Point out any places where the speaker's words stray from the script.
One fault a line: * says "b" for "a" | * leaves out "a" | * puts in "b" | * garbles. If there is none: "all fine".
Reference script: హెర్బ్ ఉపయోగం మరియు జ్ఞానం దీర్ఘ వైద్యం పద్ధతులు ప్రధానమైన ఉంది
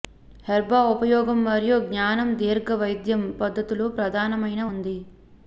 all fine